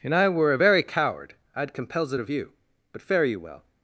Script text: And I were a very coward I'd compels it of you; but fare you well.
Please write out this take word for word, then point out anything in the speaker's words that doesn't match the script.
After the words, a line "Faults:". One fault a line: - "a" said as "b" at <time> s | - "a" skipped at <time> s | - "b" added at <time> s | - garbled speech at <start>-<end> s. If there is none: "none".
And I were a very coward I'd compels it of you; but fare you well.
Faults:
none